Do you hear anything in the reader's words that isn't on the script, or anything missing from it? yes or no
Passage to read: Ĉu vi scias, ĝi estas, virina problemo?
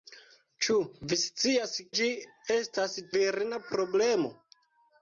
no